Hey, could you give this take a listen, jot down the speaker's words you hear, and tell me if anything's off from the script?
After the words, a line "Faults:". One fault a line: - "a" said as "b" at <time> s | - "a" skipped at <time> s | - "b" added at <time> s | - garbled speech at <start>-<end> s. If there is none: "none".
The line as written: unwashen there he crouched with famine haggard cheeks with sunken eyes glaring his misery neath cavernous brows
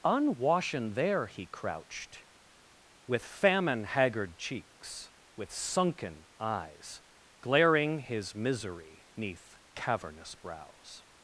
unwashen there he crouched with famine haggard cheeks with sunken eyes glaring his misery neath cavernous brows
Faults:
none